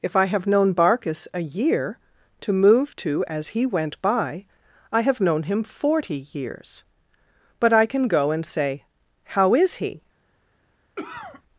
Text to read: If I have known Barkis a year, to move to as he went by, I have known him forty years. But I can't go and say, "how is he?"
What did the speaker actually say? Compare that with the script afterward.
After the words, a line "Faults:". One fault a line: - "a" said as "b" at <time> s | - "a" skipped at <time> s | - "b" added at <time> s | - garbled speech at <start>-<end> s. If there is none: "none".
If I have known Barkis a year, to move to as he went by, I have known him forty years. But I can go and say, "how is he?"
Faults:
- "can't" said as "can" at 7.8 s